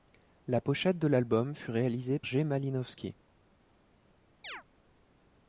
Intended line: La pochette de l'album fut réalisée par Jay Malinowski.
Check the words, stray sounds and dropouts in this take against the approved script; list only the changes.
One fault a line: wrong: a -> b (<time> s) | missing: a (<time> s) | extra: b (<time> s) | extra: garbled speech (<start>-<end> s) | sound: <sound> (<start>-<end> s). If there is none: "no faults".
missing: par (2.2 s)
sound: chirp (4.4-4.6 s)